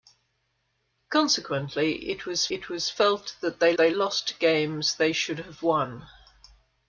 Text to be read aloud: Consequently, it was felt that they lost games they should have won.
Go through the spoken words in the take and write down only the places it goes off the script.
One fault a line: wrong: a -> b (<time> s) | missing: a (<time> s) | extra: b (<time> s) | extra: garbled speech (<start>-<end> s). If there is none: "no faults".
extra: it was (2.5 s)
extra: they (3.8 s)